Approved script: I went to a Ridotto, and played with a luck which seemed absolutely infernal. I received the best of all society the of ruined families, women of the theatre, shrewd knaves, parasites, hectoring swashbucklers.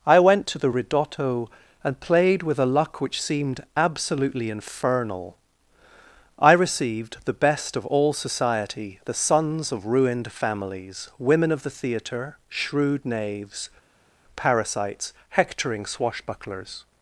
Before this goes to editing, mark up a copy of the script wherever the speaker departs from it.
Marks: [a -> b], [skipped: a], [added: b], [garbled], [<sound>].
I went to [a -> the] Ridotto, and played with a luck which seemed absolutely infernal. I received the best of all society the [added: sons] of ruined families, women of the theatre, shrewd knaves, parasites, hectoring swashbucklers.